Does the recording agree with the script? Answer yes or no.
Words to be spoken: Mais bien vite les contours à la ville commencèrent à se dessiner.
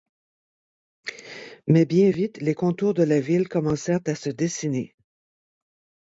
no